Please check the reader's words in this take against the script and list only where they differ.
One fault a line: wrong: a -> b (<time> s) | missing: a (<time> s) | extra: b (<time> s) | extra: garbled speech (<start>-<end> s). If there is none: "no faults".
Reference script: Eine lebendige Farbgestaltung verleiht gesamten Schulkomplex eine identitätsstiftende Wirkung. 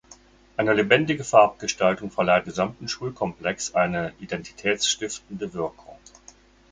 no faults